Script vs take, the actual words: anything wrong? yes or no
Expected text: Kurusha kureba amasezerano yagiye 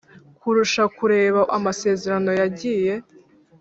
no